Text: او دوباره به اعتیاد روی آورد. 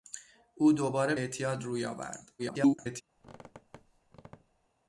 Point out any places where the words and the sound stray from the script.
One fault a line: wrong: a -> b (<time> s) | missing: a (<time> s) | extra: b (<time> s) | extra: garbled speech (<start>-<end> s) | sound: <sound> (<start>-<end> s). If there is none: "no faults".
missing: به (1.1 s)
extra: garbled speech (2.4-3.0 s)
sound: squeak (3.2-4.7 s)